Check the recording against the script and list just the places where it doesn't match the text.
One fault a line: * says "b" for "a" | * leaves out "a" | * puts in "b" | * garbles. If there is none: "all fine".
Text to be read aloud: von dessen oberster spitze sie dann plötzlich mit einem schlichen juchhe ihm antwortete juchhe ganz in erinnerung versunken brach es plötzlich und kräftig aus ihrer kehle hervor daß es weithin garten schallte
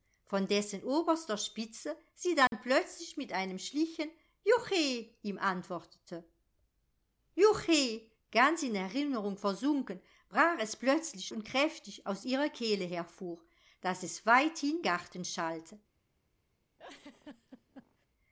all fine